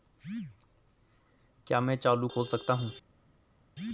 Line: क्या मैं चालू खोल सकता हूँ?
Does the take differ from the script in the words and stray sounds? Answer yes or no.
no